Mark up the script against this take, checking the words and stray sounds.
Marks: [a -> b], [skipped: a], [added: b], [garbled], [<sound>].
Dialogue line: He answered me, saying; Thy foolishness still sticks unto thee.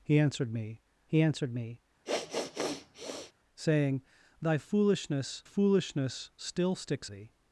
He answered me, [added: he answered me] [sniff] saying; Thy foolishness [added: foolishness] still sticks [skipped: unto] thee.